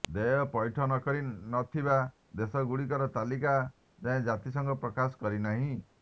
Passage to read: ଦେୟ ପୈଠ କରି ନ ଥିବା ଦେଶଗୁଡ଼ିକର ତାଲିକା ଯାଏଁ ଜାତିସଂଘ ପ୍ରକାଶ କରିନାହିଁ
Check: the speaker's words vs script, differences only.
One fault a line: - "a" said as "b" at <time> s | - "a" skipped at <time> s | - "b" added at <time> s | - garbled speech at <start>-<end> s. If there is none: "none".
none